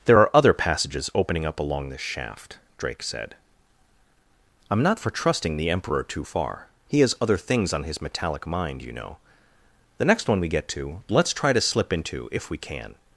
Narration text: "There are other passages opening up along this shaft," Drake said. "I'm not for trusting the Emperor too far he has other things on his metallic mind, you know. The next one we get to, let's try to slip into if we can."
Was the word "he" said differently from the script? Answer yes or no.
no